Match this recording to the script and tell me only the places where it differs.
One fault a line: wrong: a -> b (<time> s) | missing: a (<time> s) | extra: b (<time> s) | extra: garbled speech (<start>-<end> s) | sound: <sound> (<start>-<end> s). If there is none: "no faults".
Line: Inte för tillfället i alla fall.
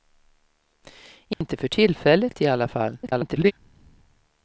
sound: dropout (1.3-1.4 s)
extra: garbled speech (3.0-3.5 s)